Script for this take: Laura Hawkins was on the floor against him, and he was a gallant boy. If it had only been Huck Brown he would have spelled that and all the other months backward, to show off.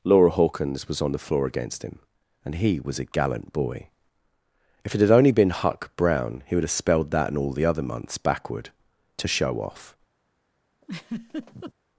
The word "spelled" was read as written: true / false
true